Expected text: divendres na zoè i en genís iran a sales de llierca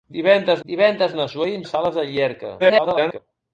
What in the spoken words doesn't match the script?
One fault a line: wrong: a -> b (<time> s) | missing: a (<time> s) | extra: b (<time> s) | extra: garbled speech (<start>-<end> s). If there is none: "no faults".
extra: divendres (0.7 s)
missing: genís iran (1.6 s)
extra: garbled speech (2.6-3.2 s)